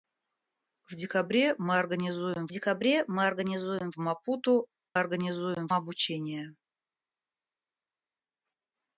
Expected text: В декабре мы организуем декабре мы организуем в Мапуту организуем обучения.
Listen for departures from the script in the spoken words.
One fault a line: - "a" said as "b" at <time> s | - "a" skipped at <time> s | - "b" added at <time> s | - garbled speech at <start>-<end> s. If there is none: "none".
none